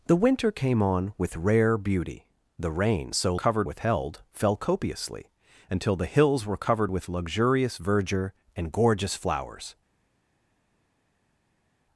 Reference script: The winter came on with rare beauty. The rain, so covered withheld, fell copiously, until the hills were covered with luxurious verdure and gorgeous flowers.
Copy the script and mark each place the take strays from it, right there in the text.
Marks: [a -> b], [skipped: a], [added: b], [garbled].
The winter came on with rare beauty. The rain, so covered withheld, fell copiously, until the hills were covered with luxurious verdure and gorgeous flowers.